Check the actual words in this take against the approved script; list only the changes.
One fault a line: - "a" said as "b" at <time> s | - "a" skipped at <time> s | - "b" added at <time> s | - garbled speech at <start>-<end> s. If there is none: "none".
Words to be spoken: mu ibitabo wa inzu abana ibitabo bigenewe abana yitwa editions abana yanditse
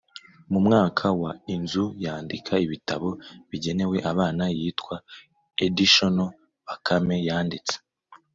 - "ibitabo" said as "mwaka" at 0.7 s
- "abana" said as "yandika" at 2.0 s
- "abana" said as "bakame" at 6.7 s